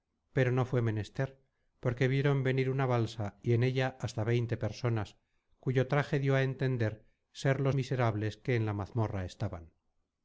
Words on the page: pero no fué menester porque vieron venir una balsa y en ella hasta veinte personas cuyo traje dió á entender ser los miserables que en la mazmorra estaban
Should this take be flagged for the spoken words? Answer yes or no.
no